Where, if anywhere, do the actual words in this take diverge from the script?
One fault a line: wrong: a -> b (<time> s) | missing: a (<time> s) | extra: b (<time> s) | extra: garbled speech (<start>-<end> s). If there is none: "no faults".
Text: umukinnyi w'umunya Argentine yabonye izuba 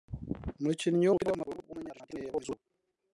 extra: w'umupira w'amaguru (1.1 s)